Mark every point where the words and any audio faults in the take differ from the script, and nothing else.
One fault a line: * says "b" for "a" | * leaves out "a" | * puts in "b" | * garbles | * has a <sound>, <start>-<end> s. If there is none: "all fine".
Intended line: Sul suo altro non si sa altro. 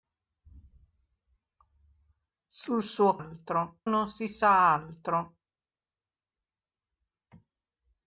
all fine